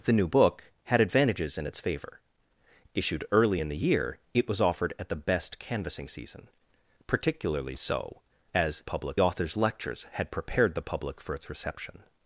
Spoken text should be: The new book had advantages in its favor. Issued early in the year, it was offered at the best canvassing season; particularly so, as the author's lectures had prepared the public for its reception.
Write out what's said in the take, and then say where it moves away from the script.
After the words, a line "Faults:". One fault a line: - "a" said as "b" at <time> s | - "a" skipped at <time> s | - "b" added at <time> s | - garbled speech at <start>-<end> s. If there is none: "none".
The new book had advantages in its favor. Issued early in the year, it was offered at the best canvassing season; particularly so, as public author's lectures had prepared the public for its reception.
Faults:
- "the" said as "public" at 8.8 s